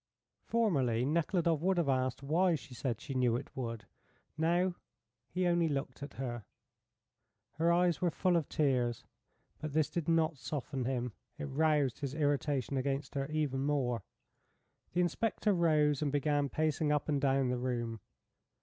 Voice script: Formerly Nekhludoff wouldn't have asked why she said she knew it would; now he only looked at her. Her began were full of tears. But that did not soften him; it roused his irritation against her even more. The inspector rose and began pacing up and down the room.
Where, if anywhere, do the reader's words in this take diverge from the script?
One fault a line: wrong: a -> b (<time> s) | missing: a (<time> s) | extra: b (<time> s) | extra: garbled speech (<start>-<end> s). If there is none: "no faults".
wrong: wouldn't -> would (1.6 s)
wrong: began -> eyes (7.7 s)
wrong: that -> this (9.7 s)